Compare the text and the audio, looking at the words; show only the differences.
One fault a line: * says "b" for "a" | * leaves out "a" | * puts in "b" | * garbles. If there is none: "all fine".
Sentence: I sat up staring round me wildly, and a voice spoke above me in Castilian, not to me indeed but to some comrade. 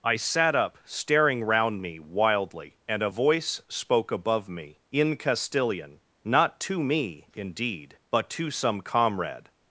all fine